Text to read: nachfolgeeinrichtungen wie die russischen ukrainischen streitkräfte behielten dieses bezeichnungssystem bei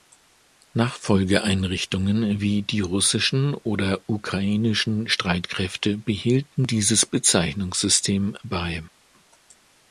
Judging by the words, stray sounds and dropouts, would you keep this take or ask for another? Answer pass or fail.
fail